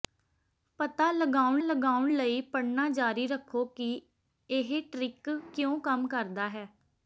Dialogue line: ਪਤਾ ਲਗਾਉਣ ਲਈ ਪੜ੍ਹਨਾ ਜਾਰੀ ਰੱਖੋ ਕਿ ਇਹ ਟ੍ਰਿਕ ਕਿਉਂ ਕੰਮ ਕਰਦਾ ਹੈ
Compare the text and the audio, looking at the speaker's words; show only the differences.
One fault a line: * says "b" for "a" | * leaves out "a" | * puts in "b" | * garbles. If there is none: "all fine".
* puts in "ਲਗਾਉਣ"